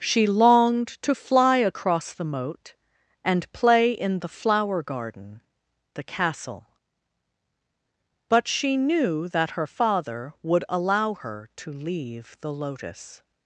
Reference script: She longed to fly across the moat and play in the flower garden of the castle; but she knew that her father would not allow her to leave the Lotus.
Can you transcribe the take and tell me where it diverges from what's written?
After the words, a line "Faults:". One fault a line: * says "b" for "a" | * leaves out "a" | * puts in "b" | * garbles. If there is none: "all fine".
She longed to fly across the moat and play in the flower garden the castle; but she knew that her father would allow her to leave the Lotus.
Faults:
* leaves out "of"
* leaves out "not"